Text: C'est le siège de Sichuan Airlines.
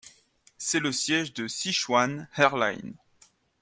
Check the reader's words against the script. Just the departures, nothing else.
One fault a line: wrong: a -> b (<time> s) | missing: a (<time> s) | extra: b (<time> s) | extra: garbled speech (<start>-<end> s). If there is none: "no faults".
no faults